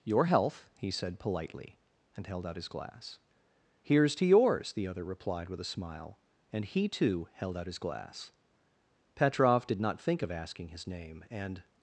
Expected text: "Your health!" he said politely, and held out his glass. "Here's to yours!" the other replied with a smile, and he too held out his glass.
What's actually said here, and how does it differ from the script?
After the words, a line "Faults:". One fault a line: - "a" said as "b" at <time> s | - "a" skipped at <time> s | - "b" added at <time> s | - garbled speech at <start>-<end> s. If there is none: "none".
"Your health!" he said politely, and held out his glass. "Here's to yours!" the other replied with a smile, and he too held out his glass. Petrov did not think of asking his name, and
Faults:
- "Petrov did not think of asking his name and" added at 9.1 s